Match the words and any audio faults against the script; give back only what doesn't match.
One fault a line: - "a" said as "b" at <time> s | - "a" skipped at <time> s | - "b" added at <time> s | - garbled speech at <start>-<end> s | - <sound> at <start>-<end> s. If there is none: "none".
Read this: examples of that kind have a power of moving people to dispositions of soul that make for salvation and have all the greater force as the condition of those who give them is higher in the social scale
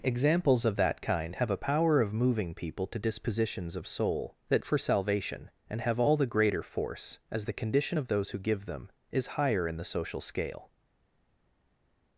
- "make" skipped at 4.6 s